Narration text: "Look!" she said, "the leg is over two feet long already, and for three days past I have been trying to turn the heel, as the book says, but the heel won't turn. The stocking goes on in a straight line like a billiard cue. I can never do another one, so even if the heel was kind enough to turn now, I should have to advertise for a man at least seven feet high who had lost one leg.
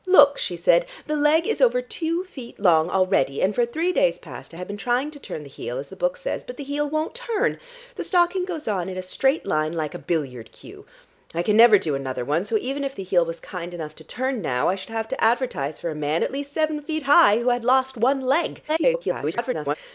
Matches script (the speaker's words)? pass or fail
fail